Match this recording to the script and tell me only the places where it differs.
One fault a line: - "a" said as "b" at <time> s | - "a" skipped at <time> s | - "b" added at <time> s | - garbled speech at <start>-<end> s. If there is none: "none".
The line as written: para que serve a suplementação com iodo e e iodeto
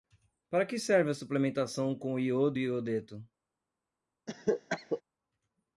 - "e" skipped at 2.7 s